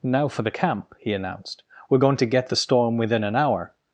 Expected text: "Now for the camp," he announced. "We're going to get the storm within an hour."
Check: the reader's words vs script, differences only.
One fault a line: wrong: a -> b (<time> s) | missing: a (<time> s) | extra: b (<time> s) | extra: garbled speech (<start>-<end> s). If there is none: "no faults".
no faults